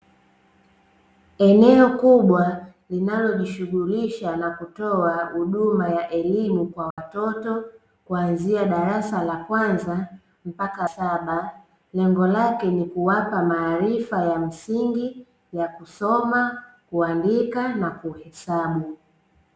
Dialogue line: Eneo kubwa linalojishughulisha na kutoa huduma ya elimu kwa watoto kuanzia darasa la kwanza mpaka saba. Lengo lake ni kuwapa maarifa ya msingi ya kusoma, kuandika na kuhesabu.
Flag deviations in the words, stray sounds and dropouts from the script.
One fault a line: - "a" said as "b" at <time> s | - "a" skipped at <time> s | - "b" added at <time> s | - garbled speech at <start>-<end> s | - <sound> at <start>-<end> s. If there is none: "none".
- dropout at 6.9-7.0 s